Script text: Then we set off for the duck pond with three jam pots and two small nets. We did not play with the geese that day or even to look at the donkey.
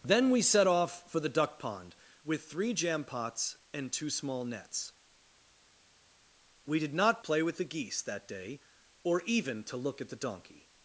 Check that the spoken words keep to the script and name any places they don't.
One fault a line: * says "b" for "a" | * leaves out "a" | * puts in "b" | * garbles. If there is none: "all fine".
all fine